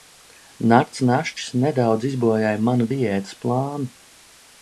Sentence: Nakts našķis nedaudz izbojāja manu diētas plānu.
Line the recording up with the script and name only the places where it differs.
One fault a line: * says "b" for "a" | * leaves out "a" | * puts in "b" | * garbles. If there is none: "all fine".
all fine